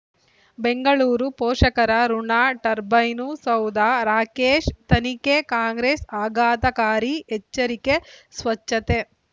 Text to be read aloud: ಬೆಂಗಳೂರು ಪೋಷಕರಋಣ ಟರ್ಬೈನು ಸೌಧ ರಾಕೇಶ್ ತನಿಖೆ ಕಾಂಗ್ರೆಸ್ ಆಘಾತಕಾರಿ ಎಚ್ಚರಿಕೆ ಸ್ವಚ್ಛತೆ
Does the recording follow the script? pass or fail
pass